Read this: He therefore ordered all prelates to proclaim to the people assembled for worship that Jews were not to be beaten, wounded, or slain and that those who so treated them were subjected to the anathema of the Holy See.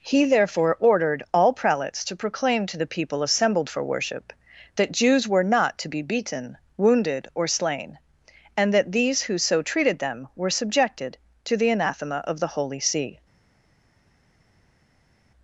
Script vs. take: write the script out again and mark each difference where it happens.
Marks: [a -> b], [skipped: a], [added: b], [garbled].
He therefore ordered all prelates to proclaim to the people assembled for worship that Jews were not to be beaten, wounded, or slain and that [those -> these] who so treated them were subjected to the anathema of the Holy See.